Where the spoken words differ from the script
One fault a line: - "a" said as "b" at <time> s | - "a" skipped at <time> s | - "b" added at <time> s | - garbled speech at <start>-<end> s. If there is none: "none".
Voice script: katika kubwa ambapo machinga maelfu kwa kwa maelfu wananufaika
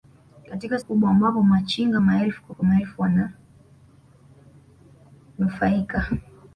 none